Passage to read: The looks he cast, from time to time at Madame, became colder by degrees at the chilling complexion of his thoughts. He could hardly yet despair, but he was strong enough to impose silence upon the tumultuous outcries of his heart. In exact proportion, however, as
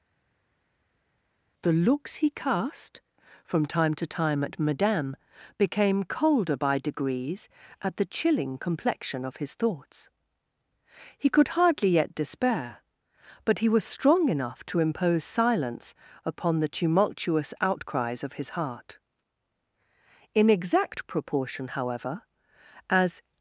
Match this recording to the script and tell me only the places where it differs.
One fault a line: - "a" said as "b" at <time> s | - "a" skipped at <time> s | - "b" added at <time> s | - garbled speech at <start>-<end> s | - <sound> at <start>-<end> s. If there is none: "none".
none